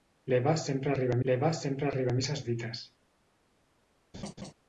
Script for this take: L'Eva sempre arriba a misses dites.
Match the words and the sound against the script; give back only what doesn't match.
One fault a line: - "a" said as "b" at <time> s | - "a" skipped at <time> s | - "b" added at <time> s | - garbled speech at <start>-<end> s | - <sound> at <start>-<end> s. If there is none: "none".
- "l'eva sempre arriba" added at 1.3 s
- laugh at 4.1-4.5 s